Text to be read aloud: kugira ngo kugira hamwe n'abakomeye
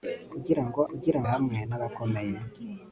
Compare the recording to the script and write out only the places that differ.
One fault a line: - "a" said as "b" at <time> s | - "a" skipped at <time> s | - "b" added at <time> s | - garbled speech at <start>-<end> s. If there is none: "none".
none